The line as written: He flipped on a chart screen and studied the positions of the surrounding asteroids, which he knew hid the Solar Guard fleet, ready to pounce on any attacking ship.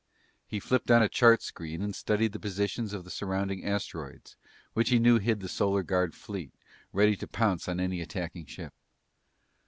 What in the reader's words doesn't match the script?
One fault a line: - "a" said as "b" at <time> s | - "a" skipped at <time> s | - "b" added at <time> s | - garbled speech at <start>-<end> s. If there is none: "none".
none